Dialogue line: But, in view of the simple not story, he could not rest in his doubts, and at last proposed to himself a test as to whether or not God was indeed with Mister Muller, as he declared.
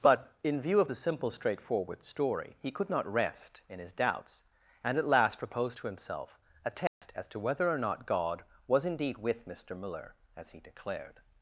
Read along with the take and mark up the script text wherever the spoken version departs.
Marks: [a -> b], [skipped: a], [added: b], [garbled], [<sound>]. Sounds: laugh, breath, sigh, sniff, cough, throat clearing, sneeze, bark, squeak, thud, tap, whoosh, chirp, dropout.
But, in view of the simple [not -> straightforward] story, he could not rest in his doubts, and at last proposed to himself a test [dropout] as to whether or not God was indeed with Mister Muller, as he declared.